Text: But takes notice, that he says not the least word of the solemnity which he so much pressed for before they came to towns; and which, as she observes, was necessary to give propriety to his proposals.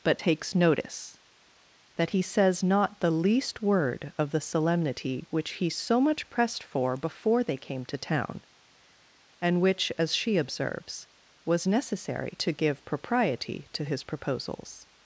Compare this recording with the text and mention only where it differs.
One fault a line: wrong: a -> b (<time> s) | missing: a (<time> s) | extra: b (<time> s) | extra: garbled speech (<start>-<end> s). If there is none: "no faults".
wrong: towns -> town (8.0 s)